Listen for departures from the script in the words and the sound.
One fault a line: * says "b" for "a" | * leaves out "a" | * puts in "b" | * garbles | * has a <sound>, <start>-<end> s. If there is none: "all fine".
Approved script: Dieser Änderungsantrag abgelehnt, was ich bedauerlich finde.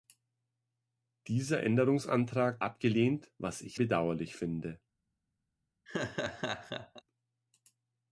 * has a laugh, 5.9-7.0 s